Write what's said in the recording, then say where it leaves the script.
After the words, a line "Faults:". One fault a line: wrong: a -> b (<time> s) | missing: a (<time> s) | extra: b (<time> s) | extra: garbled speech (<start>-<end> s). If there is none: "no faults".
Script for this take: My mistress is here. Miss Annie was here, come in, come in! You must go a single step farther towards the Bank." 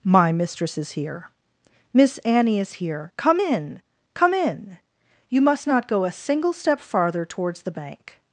My mistress is here. Miss Annie is here, come in, come in! You must not go a single step farther towards the Bank."
Faults:
wrong: was -> is (2.6 s)
extra: not (5.7 s)